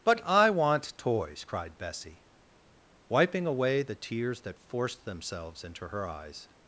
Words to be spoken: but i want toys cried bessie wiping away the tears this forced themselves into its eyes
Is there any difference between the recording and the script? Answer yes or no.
yes